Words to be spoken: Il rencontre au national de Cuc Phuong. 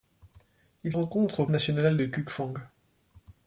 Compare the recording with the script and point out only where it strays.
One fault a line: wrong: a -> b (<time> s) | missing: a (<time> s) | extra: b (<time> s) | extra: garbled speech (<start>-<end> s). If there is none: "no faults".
no faults